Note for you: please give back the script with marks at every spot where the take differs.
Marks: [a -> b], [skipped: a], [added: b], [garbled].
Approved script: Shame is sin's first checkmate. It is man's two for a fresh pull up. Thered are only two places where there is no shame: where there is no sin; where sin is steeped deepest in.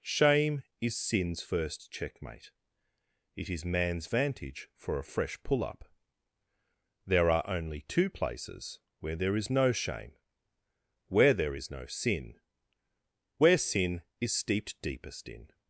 Shame is sin's first checkmate. It is man's [two -> vantage] for a fresh pull up. [Thered -> There] are only two places where there is no shame: where there is no sin; where sin is steeped deepest in.